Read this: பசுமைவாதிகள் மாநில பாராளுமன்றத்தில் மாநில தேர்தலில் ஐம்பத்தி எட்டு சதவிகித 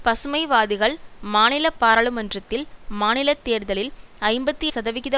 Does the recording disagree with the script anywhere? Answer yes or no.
yes